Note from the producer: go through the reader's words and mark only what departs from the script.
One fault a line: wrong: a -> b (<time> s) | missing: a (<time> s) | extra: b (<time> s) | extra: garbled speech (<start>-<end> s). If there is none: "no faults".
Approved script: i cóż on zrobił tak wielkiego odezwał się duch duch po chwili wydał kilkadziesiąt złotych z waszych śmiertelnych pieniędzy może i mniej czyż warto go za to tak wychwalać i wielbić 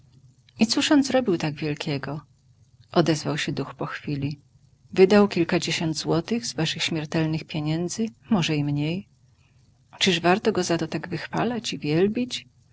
missing: duch (3.7 s)